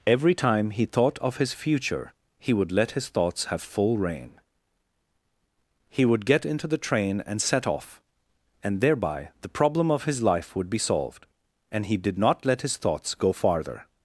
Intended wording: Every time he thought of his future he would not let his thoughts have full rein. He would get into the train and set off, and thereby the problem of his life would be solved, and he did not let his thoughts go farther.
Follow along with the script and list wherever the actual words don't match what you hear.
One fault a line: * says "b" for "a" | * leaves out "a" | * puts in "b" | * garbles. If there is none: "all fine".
* leaves out "not"